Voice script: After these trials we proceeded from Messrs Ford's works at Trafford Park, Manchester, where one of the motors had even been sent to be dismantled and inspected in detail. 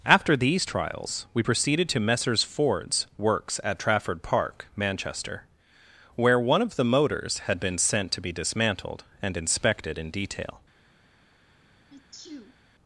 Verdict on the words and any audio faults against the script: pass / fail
fail